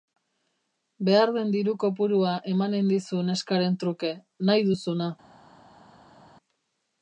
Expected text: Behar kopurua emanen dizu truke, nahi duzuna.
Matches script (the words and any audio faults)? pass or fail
fail